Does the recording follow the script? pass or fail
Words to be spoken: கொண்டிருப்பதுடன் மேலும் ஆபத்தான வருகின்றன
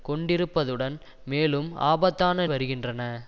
pass